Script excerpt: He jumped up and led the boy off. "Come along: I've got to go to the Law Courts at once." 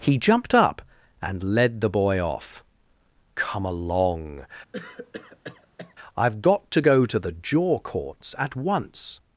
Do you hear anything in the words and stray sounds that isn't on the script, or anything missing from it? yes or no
yes